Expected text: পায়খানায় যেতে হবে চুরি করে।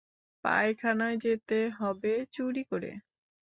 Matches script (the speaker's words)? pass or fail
pass